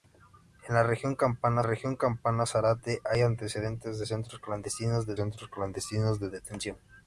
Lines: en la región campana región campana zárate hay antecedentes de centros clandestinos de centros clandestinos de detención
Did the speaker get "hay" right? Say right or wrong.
right